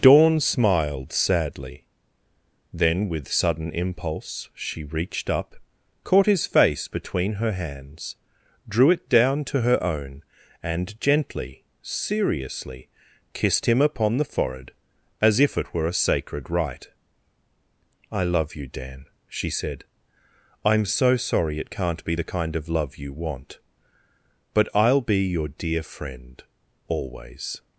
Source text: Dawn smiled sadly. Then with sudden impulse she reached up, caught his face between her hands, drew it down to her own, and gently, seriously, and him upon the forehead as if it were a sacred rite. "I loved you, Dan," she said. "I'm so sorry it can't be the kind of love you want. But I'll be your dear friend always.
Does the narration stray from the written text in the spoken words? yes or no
yes